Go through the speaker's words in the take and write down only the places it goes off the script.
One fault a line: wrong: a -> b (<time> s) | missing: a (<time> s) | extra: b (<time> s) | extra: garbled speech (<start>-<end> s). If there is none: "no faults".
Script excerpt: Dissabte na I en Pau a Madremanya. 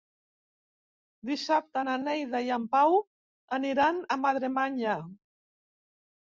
extra: Neida (2.0 s)
extra: aniran (3.6 s)